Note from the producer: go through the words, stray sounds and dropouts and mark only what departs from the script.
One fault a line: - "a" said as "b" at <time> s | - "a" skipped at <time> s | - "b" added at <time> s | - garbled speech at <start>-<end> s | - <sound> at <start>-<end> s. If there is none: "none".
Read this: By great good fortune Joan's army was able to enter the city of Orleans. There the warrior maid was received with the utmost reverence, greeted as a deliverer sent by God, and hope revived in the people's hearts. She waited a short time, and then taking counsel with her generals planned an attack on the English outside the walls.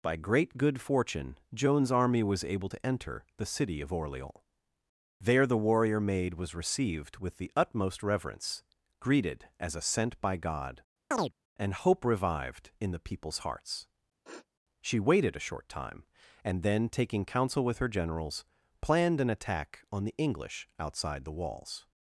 - "deliverer" skipped at 9.8 s
- chirp at 11.1-11.3 s
- sniff at 14.2-14.5 s